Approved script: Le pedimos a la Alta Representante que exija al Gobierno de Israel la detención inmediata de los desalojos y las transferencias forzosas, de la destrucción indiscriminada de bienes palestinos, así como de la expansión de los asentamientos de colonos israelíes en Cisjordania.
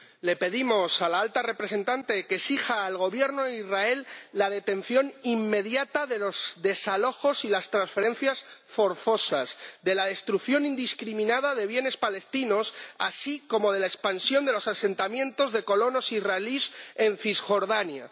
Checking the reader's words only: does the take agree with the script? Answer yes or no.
yes